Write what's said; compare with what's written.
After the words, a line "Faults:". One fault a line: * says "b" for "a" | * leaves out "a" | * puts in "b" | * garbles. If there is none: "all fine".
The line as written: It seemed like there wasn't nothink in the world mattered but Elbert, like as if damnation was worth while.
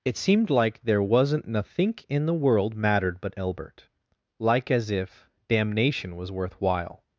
It seemed like there wasn't nothink in the world mattered but Elbert, like as if damnation was worth while.
Faults:
all fine